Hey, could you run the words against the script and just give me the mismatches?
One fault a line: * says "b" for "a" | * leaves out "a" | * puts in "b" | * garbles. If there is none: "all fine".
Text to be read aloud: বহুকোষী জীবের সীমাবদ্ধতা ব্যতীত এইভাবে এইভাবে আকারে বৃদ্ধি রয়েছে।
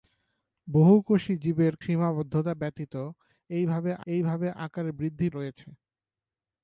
all fine